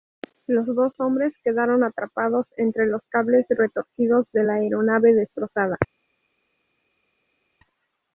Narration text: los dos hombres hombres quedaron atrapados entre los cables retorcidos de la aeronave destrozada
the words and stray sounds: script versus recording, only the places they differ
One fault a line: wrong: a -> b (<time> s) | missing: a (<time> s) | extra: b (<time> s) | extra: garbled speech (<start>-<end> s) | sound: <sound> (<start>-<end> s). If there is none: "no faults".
missing: hombres (1.3 s)